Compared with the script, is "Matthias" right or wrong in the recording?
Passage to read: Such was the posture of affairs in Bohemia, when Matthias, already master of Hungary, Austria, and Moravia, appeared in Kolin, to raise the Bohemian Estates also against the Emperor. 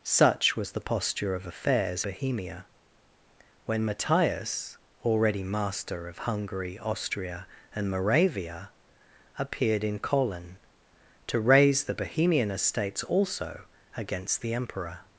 right